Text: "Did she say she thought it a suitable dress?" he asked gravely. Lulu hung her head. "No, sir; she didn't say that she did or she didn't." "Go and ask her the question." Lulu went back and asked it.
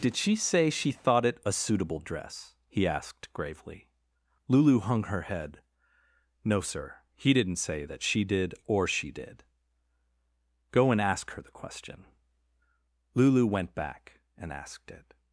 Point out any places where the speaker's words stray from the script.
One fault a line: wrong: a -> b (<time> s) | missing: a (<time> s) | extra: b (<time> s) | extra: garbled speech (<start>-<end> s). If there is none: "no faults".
wrong: she -> he (7.1 s)
wrong: didn't -> did (9.1 s)